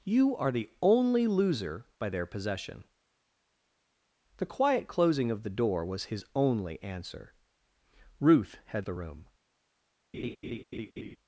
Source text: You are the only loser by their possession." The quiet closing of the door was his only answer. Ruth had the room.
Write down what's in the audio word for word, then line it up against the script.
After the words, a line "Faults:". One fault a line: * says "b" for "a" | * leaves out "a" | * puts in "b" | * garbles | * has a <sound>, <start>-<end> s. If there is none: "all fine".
You are the only loser by their possession." The quiet closing of the door was his only answer. Ruth had the room.
Faults:
* has a laugh, 10.1-11.2 s